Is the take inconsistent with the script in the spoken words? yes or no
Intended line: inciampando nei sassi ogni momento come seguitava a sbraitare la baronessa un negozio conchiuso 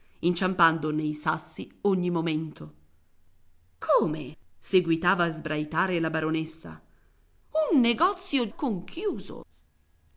no